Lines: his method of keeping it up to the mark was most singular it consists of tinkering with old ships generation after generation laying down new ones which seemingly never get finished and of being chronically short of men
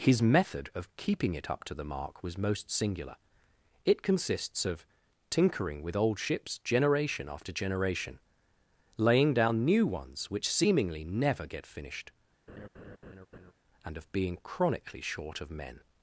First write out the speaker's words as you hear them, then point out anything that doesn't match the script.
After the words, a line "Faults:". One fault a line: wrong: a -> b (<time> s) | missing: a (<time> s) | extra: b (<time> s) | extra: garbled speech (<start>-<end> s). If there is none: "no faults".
his method of keeping it up to the mark was most singular it consists of tinkering with old ships generation after generation laying down new ones which seemingly never get finished and of being chronically short of men
Faults:
no faults